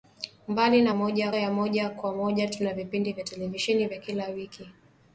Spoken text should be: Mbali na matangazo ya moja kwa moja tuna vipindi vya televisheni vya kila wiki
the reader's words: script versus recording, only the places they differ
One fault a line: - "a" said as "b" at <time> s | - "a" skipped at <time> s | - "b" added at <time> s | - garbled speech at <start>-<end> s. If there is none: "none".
- "matangazo" said as "moja" at 1.0 s